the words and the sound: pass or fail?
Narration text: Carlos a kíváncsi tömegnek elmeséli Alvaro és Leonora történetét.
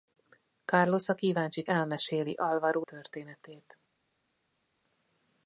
fail